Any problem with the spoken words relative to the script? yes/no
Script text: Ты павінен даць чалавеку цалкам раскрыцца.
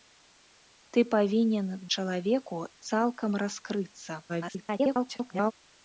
yes